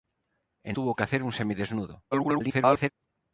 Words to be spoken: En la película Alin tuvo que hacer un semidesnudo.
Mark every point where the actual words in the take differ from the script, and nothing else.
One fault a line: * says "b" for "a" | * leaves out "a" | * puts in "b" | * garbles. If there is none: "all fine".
* leaves out "la película Alin"
* garbles